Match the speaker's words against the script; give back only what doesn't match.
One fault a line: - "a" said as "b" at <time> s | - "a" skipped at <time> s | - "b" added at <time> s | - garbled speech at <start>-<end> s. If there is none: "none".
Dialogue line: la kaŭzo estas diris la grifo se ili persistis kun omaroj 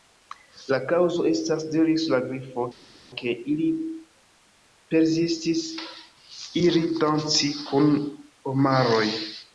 - "se" said as "ke" at 3.2 s
- "iri danci" added at 6.6 s